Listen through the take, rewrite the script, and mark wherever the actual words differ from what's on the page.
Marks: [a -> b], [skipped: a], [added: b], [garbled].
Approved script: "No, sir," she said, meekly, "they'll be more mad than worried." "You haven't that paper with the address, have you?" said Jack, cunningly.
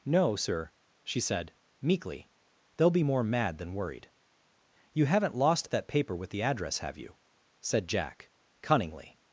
"No, sir," she said, meekly, "they'll be more mad than worried." "You haven't [added: lost] that paper with the address, have you?" said Jack, cunningly.